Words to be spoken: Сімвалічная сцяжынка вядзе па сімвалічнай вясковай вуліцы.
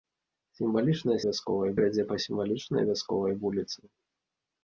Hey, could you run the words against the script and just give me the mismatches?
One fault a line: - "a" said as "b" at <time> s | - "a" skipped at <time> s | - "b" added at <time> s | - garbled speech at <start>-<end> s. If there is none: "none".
- "сцяжынка" said as "вясковай" at 1.3 s